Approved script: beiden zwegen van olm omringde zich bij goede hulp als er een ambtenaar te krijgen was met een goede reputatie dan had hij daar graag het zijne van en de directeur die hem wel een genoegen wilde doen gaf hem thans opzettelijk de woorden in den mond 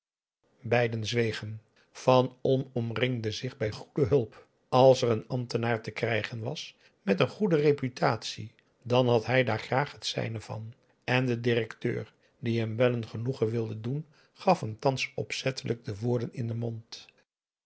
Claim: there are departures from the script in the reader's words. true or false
false